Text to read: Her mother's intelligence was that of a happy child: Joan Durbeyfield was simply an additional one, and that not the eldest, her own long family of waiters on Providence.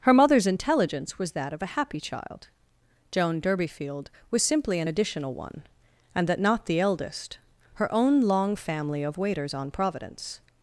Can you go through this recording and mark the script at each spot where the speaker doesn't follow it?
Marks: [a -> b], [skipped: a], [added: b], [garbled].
Her mother's intelligence was that of a happy child: Joan Durbeyfield was simply an additional one, and that not the eldest, her own long family of waiters on Providence.